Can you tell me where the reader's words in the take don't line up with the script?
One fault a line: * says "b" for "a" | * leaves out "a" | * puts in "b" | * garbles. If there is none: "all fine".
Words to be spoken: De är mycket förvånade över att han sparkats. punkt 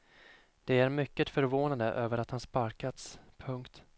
all fine